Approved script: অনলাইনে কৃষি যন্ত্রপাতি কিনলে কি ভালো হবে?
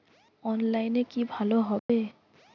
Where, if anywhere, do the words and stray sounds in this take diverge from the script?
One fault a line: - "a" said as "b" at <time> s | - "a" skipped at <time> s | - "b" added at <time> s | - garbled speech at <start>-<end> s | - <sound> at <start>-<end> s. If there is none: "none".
- "কৃষি যন্ত্রপাতি কিনলে" skipped at 1.0 s
- dropout at 1.8-1.9 s